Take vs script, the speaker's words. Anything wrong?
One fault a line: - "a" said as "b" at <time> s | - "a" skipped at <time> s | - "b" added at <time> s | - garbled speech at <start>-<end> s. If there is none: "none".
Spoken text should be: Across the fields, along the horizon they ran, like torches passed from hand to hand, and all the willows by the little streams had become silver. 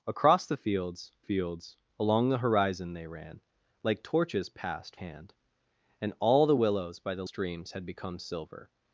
- "fields" added at 1.2 s
- "from" skipped at 5.0 s
- "to hand" skipped at 5.3 s
- "little" skipped at 7.2 s